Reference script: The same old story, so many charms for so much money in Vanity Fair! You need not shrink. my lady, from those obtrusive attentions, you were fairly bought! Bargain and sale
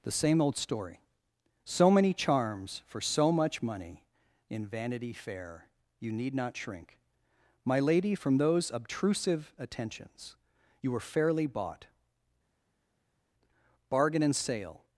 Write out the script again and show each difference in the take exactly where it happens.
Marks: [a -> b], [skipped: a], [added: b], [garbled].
The same old story, so many charms for so much money in Vanity Fair! You need not shrink. my lady, from those obtrusive attentions, you were fairly bought! Bargain and sale